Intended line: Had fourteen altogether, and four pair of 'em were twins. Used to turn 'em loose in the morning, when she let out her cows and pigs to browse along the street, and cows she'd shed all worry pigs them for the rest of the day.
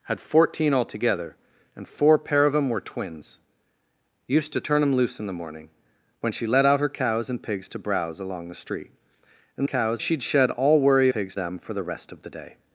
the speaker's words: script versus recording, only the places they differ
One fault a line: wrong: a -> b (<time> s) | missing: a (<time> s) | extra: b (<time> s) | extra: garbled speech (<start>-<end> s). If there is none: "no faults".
no faults